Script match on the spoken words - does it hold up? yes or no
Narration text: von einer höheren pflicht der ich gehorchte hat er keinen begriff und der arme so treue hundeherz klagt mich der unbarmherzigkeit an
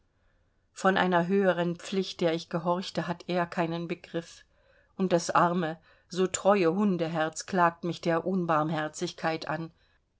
no